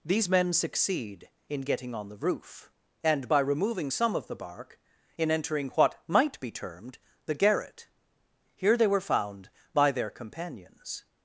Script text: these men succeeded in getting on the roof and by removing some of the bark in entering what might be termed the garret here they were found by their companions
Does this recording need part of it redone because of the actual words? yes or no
yes